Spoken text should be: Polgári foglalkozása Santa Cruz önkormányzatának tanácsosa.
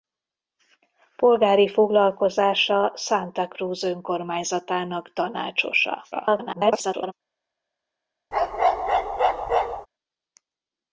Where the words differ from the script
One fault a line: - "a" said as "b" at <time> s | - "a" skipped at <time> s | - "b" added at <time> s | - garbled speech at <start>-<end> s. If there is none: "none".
- garbled speech at 6.1-7.1 s